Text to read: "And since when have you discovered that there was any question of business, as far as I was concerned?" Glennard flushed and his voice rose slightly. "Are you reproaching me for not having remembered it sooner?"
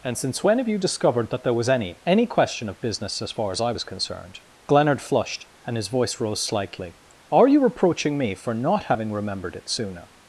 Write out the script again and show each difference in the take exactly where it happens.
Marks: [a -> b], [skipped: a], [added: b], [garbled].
"And since when have you discovered that there was any [added: any] question of business, as far as I was concerned?" Glennard flushed and his voice rose slightly. "Are you reproaching me for not having remembered it sooner?"